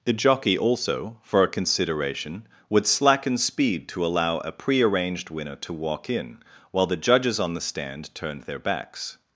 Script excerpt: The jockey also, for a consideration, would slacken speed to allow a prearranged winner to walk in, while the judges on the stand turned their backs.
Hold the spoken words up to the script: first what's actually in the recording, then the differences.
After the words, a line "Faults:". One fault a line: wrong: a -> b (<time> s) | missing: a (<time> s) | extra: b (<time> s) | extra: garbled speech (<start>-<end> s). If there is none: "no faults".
The jockey also, for a consideration, would slacken speed to allow a prearranged winner to walk in, while the judges on the stand turned their backs.
Faults:
no faults